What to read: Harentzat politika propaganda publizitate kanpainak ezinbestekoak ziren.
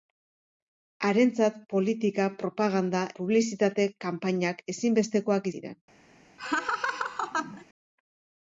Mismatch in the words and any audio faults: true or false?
true